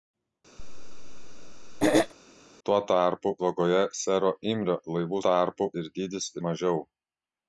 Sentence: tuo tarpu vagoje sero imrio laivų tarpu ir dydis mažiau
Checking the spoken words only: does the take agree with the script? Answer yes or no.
yes